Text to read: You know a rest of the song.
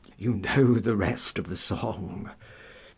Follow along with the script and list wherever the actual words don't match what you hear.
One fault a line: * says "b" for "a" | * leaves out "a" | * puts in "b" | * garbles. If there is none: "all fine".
* says "the" for "a"